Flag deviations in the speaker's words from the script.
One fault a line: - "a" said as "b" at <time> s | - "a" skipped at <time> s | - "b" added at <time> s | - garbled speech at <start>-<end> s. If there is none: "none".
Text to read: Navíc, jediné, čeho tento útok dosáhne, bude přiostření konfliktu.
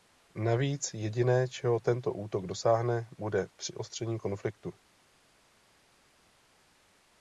none